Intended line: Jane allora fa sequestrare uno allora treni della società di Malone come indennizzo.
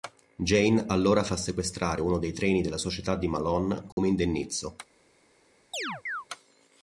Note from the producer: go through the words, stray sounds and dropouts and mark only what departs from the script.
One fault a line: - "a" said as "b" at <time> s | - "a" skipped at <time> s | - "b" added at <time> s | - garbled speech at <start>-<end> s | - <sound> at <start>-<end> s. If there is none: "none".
- "allora" said as "dei" at 2.2 s
- dropout at 3.9-4.0 s
- chirp at 5.7-6.3 s